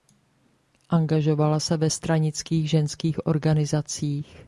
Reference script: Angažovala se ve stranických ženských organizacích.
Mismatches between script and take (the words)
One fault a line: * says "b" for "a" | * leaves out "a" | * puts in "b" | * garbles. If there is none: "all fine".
all fine